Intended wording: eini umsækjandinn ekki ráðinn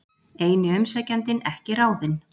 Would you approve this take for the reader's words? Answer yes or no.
yes